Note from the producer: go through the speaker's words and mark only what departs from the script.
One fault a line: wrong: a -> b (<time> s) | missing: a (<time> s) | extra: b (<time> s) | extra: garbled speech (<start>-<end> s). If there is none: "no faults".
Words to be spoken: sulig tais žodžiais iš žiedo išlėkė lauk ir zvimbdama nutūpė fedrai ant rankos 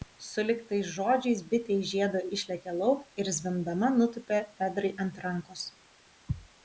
extra: bitė (1.5 s)